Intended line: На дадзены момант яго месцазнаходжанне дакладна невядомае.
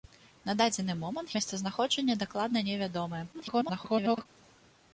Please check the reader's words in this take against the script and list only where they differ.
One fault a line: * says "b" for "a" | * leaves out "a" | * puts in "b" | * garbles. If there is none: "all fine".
* leaves out "яго"
* garbles